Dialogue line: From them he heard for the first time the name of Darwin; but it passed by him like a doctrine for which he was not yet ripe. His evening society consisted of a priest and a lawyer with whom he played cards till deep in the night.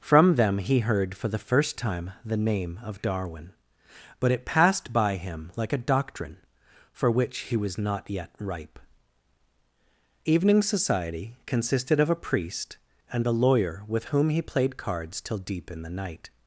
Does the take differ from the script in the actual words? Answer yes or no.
yes